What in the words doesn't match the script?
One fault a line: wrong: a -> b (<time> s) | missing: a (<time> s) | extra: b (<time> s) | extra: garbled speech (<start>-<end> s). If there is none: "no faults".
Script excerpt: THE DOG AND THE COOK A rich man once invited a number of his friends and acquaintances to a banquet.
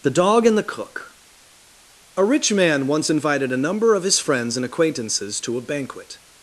no faults